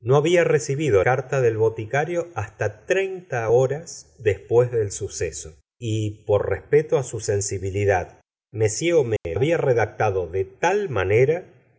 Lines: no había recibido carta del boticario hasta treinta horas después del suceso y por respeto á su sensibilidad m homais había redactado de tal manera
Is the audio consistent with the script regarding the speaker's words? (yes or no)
yes